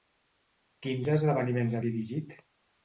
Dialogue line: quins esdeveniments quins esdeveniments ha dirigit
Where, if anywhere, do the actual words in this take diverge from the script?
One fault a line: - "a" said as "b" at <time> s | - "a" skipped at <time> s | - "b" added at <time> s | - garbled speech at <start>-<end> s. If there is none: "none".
- "quins esdeveniments" skipped at 1.8 s